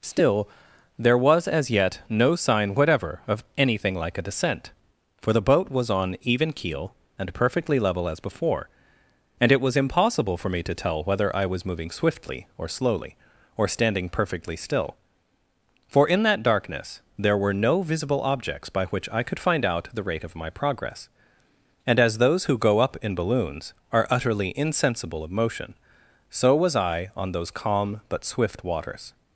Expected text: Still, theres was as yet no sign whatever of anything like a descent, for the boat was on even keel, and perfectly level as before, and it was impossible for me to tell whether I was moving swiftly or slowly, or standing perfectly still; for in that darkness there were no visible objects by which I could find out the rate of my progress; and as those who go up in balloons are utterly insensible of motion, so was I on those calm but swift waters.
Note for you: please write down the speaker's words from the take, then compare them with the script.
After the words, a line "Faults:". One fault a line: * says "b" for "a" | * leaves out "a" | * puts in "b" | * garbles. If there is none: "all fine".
Still, there was as yet no sign whatever of anything like a descent, for the boat was on even keel, and perfectly level as before, and it was impossible for me to tell whether I was moving swiftly or slowly, or standing perfectly still; for in that darkness there were no visible objects by which I could find out the rate of my progress; and as those who go up in balloons are utterly insensible of motion, so was I on those calm but swift waters.
Faults:
* says "there" for "theres"